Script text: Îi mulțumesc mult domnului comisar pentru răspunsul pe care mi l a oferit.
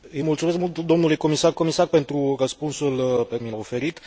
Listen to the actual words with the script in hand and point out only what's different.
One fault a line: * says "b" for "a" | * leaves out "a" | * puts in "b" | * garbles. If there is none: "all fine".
* puts in "comisar"
* leaves out "care"
* leaves out "a"